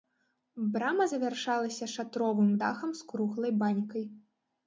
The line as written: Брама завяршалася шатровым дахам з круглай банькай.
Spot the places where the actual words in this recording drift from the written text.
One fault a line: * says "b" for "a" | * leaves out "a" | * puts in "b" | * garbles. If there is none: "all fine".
all fine